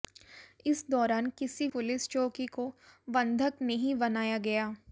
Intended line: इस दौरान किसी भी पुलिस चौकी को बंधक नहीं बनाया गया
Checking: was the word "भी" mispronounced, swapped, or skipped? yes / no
yes